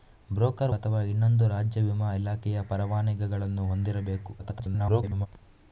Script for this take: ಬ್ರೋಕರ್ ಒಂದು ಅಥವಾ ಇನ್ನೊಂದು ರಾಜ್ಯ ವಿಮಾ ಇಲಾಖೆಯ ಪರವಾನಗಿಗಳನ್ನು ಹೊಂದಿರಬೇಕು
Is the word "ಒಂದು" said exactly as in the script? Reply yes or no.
no